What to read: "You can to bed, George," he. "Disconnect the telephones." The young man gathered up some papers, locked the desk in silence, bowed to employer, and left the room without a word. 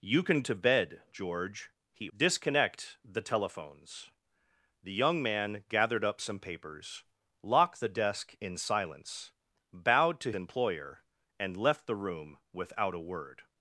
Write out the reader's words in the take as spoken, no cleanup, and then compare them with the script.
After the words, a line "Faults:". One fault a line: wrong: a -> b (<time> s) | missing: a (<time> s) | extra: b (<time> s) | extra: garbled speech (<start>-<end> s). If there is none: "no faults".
"You can to bed, George," he. "Disconnect the telephones." The young man gathered up some papers, locked the desk in silence, bowed to employer, and left the room without a word.
Faults:
no faults